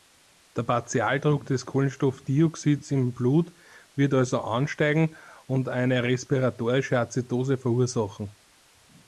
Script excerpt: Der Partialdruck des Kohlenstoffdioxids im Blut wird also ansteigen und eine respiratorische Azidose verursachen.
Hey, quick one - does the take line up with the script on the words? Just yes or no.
yes